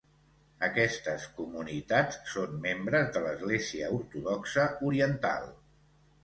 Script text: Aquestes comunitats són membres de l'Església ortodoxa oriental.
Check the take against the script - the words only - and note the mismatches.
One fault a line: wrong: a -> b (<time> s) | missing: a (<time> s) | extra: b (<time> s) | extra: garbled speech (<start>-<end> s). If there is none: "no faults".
no faults